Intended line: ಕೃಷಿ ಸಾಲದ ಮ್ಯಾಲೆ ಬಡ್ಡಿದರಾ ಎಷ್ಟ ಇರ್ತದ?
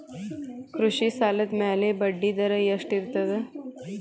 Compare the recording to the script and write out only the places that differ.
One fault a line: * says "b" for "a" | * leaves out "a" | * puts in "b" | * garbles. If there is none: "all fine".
all fine